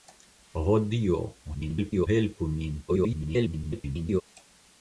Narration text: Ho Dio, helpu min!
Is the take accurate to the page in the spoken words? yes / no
no